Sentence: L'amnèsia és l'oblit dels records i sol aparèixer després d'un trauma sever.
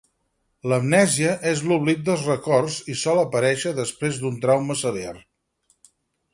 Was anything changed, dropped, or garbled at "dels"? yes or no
no